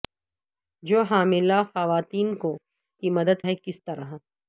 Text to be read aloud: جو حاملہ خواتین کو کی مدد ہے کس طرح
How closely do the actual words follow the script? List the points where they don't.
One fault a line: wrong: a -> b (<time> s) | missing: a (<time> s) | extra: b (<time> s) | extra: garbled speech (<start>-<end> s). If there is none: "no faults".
no faults